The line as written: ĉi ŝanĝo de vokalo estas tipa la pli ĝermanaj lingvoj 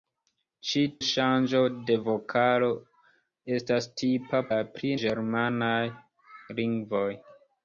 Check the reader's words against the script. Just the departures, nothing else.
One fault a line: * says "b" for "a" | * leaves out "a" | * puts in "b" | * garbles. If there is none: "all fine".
all fine